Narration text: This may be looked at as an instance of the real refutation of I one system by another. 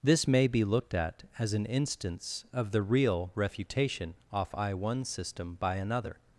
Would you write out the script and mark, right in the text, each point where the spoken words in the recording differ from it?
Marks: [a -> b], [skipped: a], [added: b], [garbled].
This may be looked at as an instance of the real refutation [of -> off] I one system by another.